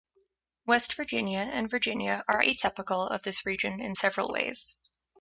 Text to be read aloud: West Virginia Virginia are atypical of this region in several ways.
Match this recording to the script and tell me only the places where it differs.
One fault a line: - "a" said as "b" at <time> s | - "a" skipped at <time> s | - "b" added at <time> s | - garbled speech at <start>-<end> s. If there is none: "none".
- "and" added at 1.5 s